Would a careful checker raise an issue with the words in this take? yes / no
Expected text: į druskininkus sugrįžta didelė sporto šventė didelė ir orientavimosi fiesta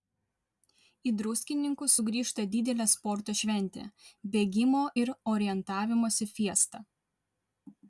yes